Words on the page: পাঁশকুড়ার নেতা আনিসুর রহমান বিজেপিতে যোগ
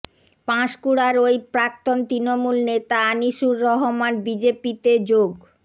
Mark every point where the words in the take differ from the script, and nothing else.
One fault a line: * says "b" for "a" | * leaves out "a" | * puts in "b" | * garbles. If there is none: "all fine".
* puts in "ওই প্রাক্তন তৃণমূল"